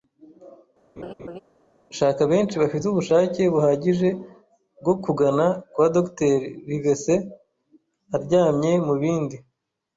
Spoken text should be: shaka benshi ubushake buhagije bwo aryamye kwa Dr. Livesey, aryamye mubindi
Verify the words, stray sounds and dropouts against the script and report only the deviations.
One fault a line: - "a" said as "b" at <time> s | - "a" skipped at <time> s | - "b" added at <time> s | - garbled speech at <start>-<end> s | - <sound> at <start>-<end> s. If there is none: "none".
- laugh at 1.0-1.4 s
- "bafite" added at 2.6 s
- "aryamye" said as "kugana" at 5.0 s